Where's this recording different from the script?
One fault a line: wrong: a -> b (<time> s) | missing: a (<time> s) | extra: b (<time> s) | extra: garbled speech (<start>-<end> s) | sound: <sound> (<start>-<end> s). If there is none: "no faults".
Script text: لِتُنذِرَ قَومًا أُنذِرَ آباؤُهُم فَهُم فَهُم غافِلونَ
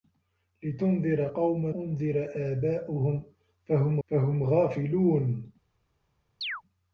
sound: chirp (6.4-6.6 s)